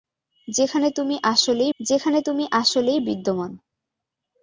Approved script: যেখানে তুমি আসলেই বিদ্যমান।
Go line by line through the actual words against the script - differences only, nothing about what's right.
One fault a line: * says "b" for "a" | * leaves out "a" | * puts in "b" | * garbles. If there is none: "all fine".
* puts in "যেখানে তুমি আসলেই"